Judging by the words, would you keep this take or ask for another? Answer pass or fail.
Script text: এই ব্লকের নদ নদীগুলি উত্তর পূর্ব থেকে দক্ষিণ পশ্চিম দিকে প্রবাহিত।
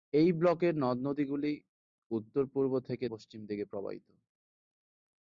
fail